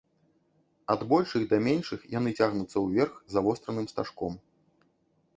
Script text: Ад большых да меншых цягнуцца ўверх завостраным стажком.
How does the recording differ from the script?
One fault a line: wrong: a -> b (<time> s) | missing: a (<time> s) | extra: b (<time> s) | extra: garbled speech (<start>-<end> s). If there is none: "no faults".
extra: яны (2.1 s)